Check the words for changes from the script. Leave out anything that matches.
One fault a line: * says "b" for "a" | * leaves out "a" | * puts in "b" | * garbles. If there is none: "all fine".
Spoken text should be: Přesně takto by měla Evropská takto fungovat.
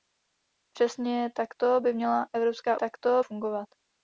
all fine